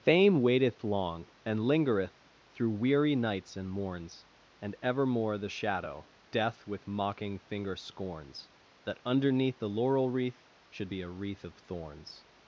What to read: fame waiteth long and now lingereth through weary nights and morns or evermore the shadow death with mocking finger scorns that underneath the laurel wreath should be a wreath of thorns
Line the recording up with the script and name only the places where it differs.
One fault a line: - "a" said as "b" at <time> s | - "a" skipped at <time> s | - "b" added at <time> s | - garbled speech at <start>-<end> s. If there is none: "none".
- "now" skipped at 1.6 s
- "or" said as "and" at 4.6 s